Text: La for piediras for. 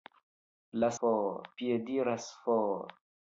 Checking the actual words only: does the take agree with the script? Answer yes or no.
yes